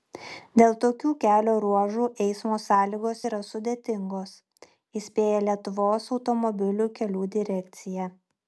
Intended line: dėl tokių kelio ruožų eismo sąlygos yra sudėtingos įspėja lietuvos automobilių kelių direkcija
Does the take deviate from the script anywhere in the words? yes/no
no